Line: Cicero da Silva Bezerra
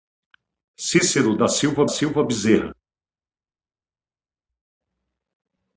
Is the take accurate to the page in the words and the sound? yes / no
no